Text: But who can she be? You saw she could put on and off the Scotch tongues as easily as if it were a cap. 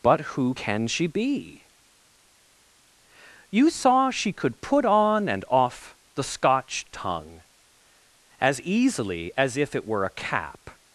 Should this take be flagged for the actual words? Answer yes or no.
yes